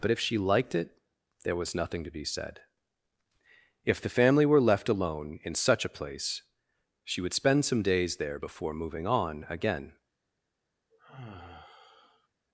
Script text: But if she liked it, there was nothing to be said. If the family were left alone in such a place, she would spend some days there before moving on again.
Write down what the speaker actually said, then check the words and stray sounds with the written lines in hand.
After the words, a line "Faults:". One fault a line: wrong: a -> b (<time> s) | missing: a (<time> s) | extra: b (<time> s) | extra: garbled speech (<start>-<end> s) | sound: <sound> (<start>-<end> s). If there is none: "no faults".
But if she liked it, there was nothing to be said. If the family were left alone in such a place, she would spend some days there before moving on again.
Faults:
sound: sigh (10.9-12.3 s)